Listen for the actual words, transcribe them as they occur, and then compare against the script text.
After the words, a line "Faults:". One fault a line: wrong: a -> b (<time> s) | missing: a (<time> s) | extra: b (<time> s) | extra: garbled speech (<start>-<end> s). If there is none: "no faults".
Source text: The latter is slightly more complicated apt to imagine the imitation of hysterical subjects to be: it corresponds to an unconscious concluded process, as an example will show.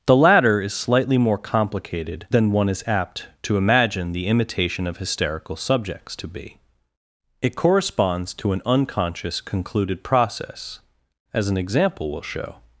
The latter is slightly more complicated than one is apt to imagine the imitation of hysterical subjects to be: it corresponds to an unconscious concluded process, as an example will show.
Faults:
extra: than one is (2.3 s)